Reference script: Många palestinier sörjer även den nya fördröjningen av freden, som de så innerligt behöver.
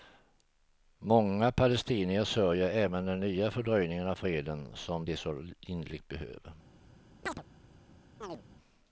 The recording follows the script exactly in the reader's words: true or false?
true